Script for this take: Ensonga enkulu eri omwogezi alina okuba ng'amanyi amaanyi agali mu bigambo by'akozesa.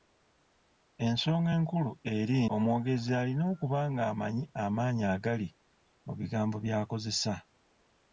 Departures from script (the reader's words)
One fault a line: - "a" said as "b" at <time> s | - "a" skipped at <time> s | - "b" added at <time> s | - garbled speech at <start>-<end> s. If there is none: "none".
none